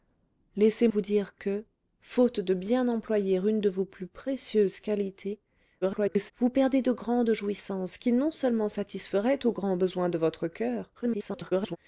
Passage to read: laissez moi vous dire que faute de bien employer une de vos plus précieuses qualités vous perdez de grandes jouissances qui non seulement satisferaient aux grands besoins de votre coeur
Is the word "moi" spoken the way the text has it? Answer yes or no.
no